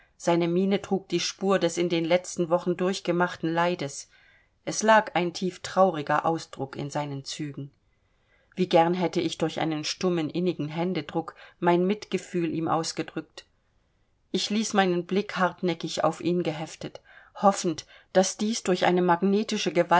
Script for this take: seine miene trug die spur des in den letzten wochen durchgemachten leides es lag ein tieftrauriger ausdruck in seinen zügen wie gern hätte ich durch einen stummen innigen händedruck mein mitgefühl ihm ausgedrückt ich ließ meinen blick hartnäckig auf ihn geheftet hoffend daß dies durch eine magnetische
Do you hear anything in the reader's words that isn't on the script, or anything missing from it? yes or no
no